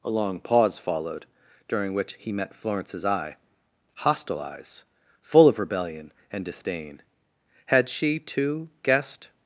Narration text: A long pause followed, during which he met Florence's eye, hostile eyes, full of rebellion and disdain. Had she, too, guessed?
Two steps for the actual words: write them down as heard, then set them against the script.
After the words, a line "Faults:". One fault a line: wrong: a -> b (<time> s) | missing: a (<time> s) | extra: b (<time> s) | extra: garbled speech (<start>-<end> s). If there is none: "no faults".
A long pause followed, during which he met Florence's eye, hostile eyes, full of rebellion and disdain. Had she, too, guessed?
Faults:
no faults